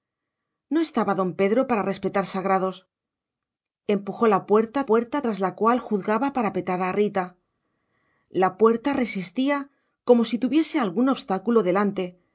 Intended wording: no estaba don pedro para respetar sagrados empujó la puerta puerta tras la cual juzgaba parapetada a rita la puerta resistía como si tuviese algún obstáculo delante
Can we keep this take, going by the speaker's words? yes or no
yes